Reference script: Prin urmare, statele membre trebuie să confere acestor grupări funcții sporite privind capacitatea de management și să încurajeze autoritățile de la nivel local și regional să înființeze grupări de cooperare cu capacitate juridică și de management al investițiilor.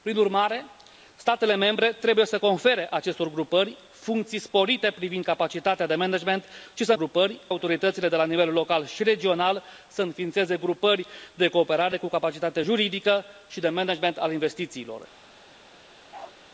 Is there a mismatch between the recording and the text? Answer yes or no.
yes